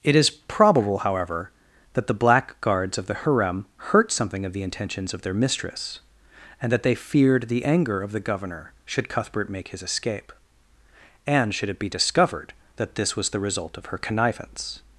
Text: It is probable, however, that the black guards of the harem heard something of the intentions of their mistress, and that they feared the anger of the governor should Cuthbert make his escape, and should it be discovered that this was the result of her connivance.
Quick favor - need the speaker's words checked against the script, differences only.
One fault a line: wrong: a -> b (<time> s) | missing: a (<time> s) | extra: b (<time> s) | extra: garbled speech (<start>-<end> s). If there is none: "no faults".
wrong: heard -> hurt (3.8 s)